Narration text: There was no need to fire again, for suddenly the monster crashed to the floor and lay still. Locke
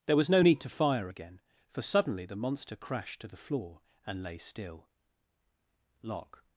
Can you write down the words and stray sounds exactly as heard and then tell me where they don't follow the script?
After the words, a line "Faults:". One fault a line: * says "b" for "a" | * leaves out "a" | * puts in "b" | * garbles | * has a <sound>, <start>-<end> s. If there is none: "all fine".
There was no need to fire again, for suddenly the monster crashed to the floor and lay still. Locke
Faults:
all fine